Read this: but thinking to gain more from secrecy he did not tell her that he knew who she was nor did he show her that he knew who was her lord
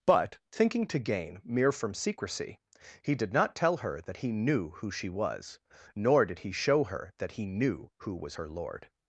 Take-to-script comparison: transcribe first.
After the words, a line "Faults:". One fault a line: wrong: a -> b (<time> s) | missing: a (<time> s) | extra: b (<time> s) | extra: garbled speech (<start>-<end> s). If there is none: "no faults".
but thinking to gain mere from secrecy he did not tell her that he knew who she was nor did he show her that he knew who was her lord
Faults:
wrong: more -> mere (1.4 s)